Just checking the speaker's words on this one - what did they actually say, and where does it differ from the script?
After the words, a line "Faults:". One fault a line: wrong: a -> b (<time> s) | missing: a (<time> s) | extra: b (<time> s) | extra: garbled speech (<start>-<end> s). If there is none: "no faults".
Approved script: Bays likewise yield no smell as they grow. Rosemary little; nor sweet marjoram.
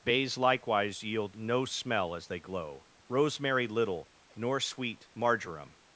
Bays likewise yield no smell as they glow. Rosemary little; nor sweet marjoram.
Faults:
wrong: grow -> glow (2.4 s)